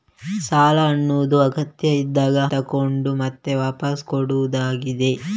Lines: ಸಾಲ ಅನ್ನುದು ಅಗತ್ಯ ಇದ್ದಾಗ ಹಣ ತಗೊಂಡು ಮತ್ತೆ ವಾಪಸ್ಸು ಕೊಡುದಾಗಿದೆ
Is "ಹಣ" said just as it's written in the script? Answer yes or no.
no